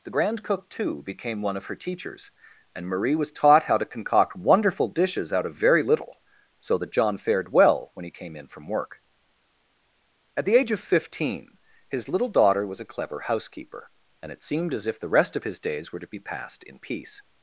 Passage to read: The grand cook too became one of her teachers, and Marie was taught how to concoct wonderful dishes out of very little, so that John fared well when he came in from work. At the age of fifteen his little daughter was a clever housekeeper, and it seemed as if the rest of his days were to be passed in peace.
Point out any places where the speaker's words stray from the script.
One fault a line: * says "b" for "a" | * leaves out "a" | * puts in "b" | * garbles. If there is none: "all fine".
all fine